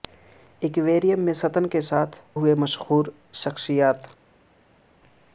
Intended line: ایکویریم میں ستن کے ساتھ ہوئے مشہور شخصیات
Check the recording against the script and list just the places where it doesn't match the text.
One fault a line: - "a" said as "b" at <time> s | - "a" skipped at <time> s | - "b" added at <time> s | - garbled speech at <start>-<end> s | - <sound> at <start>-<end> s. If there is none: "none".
none